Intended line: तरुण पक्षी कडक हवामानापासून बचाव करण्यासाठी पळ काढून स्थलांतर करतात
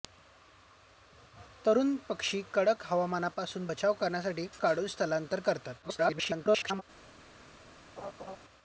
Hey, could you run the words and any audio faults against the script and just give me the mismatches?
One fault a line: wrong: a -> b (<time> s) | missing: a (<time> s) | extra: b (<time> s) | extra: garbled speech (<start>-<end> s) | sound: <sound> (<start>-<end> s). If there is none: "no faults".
missing: पळ (4.5 s)
extra: garbled speech (5.8-6.8 s)
sound: laugh (8.0-8.4 s)